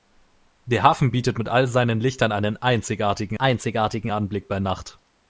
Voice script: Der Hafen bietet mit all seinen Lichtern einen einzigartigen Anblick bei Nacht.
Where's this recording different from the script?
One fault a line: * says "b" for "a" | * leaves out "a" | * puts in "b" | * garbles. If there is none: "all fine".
* puts in "einzigartigen"